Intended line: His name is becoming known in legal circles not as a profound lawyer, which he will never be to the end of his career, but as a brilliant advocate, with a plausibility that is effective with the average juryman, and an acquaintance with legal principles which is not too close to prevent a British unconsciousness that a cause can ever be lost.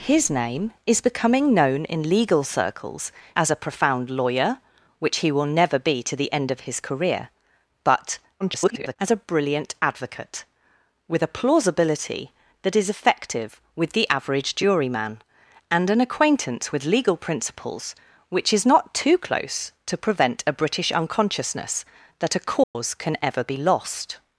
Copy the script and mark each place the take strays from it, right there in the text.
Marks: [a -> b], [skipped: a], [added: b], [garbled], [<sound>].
His name is becoming known in legal circles [skipped: not] as a profound lawyer, which he will never be to the end of his career, but [garbled] as a brilliant advocate, with a plausibility that is effective with the average juryman, and an acquaintance with legal principles which is not too close to prevent a British unconsciousness that a cause [dropout] can ever be lost.